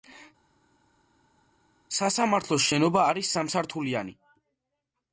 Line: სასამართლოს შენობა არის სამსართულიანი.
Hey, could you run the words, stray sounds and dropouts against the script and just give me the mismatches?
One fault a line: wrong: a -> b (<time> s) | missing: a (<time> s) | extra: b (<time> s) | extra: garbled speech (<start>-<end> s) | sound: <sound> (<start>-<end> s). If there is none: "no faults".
no faults